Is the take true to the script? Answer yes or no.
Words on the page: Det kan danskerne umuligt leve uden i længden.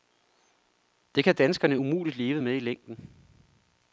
no